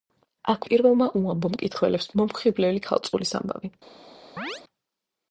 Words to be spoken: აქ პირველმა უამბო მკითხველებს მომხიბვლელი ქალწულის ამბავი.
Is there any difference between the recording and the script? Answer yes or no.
no